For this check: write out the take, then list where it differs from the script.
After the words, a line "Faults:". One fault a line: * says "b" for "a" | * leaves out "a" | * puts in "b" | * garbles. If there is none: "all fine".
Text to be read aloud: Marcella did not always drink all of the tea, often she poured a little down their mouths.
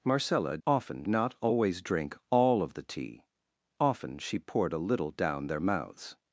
Marcella often not always drink all of the tea, often she poured a little down their mouths.
Faults:
* says "often" for "did"